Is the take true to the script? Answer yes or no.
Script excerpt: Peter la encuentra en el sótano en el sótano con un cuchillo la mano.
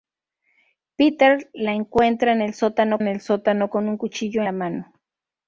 yes